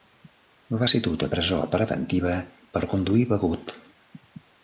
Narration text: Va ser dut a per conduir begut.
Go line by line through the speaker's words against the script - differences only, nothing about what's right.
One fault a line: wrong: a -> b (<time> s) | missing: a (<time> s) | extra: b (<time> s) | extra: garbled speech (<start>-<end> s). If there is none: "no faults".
extra: presó preventiva (1.3 s)